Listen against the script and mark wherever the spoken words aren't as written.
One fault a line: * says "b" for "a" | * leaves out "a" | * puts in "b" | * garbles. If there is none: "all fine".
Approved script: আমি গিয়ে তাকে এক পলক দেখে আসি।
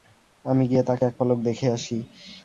all fine